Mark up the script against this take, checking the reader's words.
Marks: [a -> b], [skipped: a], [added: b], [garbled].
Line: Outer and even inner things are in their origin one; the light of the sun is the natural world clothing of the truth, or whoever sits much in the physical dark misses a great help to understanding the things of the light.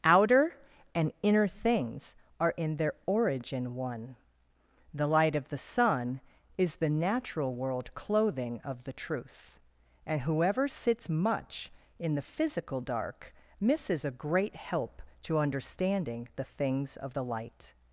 Outer and [skipped: even] inner things are in their origin one; the light of the sun is the natural world clothing of the truth, [or -> and] whoever sits much in the physical dark misses a great help to understanding the things of the light.